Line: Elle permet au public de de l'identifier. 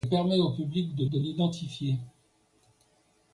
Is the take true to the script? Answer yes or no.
yes